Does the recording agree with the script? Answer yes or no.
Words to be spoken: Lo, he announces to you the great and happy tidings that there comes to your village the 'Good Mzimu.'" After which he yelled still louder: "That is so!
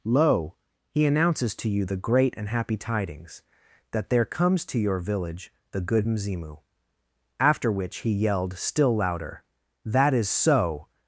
yes